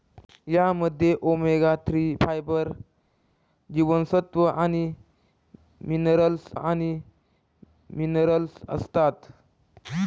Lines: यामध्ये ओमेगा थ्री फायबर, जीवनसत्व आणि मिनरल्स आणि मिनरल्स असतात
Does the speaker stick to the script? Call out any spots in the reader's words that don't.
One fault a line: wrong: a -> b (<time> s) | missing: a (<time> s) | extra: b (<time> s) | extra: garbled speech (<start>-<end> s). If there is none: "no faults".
no faults